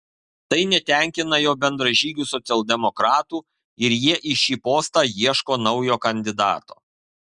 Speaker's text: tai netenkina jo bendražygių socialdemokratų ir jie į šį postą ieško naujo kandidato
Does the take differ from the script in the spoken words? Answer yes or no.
no